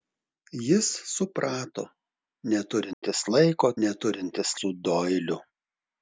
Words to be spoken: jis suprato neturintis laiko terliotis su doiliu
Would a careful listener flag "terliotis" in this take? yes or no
yes